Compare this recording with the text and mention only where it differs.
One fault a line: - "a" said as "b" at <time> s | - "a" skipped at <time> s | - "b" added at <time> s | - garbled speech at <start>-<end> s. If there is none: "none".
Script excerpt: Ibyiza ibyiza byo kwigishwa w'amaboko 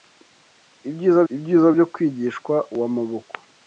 none